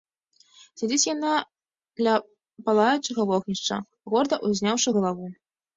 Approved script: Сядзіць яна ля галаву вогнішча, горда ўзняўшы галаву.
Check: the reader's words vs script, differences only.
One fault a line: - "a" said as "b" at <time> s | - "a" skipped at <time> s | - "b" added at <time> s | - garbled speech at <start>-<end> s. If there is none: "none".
- "галаву" said as "палаючага" at 2.7 s